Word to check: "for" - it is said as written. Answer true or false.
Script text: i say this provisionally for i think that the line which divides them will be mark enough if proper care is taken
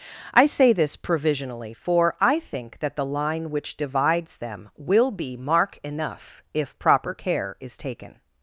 true